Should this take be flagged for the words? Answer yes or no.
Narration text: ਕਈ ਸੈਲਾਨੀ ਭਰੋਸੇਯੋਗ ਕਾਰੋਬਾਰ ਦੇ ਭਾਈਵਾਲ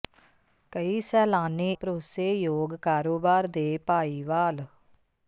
no